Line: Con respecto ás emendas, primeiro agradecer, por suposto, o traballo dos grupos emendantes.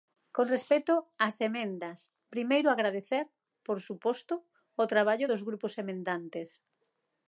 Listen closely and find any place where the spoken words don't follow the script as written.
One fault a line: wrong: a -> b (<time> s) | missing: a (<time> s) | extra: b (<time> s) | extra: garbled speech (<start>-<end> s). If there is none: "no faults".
no faults